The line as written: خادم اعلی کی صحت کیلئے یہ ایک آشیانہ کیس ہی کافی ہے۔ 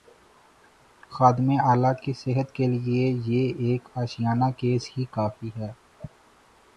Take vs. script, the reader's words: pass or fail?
pass